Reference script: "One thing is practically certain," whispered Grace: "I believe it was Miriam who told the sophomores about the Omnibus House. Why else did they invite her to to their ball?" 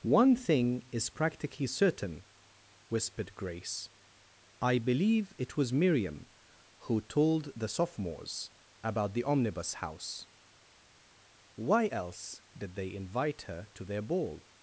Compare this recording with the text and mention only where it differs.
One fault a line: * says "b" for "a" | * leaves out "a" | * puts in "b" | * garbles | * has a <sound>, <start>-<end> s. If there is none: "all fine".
* leaves out "to"